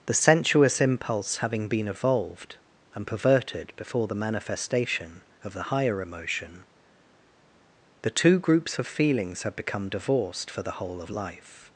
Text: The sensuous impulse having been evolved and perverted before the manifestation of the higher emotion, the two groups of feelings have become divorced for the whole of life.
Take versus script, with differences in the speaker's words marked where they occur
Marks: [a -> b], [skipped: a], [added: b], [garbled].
The sensuous impulse having been evolved and perverted before the manifestation of the higher emotion, the two groups of feelings have become divorced for the whole of life.